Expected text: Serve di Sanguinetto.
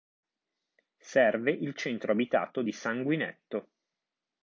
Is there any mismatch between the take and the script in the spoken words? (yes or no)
yes